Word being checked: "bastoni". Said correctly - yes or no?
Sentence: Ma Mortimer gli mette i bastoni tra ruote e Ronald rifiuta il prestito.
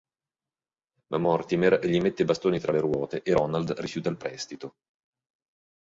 yes